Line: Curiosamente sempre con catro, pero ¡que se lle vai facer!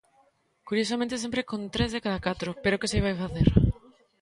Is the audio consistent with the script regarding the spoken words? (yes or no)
no